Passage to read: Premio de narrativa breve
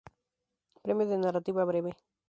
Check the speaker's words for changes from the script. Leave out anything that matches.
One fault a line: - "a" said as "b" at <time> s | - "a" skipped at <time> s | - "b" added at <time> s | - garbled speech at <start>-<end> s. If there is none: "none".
none